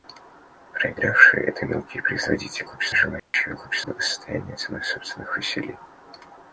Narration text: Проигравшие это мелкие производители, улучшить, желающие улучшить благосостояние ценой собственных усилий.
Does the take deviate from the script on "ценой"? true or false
false